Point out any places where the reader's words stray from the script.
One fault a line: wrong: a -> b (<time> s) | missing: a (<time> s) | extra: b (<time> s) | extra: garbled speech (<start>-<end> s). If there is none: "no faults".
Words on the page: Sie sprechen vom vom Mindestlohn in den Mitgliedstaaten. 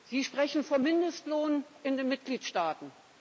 missing: vom (0.8 s)